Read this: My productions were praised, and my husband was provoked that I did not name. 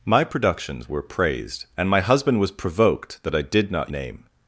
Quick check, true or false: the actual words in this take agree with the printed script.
true